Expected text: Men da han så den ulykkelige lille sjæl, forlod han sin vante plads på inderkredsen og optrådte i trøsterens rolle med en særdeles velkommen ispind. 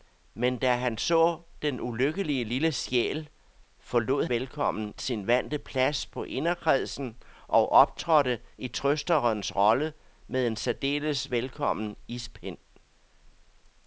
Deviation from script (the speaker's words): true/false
true